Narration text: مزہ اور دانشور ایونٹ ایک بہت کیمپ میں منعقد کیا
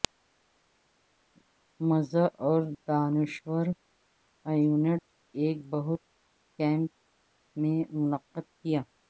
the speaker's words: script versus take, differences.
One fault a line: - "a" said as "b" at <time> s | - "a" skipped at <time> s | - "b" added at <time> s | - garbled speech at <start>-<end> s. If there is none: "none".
none